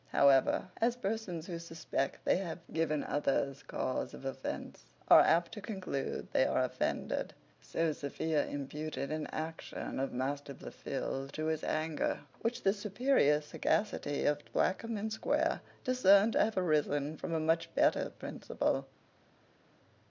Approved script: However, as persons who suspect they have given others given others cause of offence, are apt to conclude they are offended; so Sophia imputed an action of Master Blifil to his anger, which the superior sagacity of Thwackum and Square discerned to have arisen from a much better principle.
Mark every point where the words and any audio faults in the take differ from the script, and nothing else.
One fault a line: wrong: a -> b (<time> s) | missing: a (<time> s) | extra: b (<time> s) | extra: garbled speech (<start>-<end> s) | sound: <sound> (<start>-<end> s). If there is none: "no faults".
missing: given others (3.6 s)